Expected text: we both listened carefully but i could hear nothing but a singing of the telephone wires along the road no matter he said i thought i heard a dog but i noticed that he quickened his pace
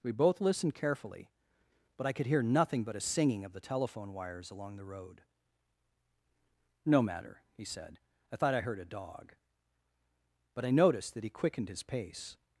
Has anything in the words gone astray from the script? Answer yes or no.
no